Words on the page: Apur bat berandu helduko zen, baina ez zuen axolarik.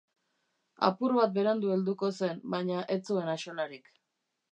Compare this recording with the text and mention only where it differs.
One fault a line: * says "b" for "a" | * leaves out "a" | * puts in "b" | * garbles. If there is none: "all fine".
all fine